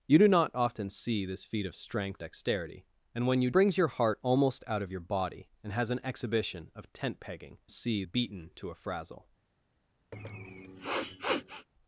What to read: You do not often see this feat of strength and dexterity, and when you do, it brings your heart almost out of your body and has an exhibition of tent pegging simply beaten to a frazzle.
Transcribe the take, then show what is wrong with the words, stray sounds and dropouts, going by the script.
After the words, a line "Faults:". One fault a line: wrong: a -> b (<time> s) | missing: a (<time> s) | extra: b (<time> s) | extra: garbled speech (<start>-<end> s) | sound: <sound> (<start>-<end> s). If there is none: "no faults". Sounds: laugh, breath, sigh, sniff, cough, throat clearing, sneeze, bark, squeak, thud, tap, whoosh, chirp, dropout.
You do not often see this feat of strength dexterity, and when you brings your heart almost out of your body and has an exhibition of tent pegging see beaten to a frazzle.
Faults:
missing: and (2.2 s)
missing: do it (3.5 s)
wrong: simply -> see (7.7 s)
sound: sniff (10.1-11.7 s)